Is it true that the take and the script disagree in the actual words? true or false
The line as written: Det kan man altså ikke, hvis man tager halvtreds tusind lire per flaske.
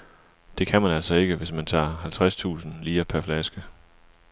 false